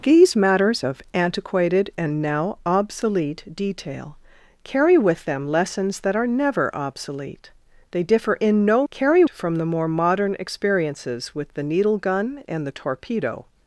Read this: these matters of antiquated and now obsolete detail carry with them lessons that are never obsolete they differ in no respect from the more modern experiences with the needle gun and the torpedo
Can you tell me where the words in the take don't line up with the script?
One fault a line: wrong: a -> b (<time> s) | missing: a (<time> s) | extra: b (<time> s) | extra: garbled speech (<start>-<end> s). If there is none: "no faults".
wrong: respect -> carry (8.9 s)